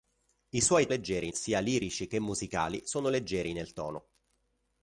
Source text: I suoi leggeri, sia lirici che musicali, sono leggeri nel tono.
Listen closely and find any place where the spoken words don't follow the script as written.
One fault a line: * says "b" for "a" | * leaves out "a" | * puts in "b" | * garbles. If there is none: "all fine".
all fine